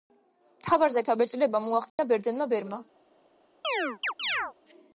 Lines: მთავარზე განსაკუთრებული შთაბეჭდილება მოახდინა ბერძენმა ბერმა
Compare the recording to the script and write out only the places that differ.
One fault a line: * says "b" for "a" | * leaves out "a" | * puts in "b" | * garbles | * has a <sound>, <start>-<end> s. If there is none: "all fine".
* leaves out "განსაკუთრებული"
* has a dropout, 1.9-2.0 s
* has a chirp, 3.6-4.5 s